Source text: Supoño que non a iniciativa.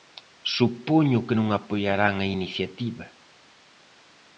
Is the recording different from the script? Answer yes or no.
yes